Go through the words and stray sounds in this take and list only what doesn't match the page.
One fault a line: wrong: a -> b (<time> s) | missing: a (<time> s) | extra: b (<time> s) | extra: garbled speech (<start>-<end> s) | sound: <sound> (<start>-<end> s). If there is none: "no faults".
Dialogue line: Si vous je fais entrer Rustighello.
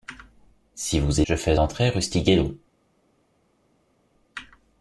no faults